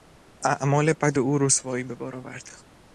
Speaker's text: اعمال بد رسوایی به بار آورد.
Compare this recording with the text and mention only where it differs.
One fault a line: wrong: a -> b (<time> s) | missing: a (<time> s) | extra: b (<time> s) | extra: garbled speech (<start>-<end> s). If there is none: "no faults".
extra: او (1.2 s)